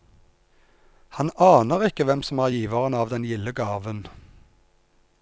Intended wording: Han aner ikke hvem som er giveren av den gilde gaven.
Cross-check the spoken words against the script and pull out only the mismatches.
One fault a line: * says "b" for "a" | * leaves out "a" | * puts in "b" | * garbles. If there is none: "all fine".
all fine